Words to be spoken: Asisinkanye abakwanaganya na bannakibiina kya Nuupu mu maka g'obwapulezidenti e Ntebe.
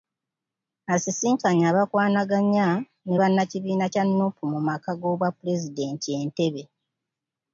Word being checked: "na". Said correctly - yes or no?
no